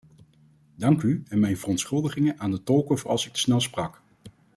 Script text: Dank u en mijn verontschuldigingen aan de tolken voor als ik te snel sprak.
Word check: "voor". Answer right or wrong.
right